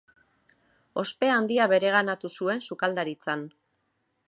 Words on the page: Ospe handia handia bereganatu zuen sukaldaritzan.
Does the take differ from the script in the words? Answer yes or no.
yes